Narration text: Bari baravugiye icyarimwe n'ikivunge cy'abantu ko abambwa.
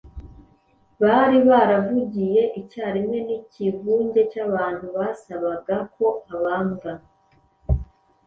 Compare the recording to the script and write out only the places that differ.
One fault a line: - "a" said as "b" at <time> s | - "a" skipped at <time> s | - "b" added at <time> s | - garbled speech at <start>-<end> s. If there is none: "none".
- "basabaga" added at 5.0 s